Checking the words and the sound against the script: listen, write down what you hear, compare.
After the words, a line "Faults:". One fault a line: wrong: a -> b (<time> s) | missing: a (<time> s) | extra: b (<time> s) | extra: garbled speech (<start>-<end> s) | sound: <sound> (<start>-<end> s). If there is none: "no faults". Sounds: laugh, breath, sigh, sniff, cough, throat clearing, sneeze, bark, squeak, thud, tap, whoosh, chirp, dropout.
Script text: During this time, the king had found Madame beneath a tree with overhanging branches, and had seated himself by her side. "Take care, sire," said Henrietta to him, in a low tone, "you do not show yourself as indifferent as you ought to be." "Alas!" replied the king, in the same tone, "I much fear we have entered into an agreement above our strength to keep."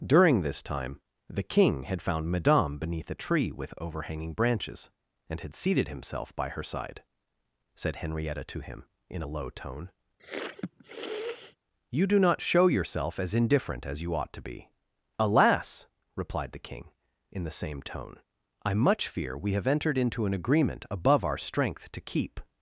During this time, the king had found Madame beneath a tree with overhanging branches, and had seated himself by her side," "Said Henrietta to him, in a low tone, "you do not show yourself as indifferent as you ought to be." "Alas!" replied the king, in the same tone, "I much fear we have entered into an agreement above our strength to keep."
Faults:
missing: Take care sire (7.0 s)
sound: sniff (10.2-11.6 s)